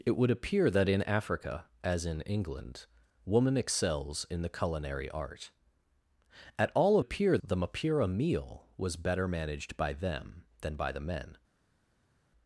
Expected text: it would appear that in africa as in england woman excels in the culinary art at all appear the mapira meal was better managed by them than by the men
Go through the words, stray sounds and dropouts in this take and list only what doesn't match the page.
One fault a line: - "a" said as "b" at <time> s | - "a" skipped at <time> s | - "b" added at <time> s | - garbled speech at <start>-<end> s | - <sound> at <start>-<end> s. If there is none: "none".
none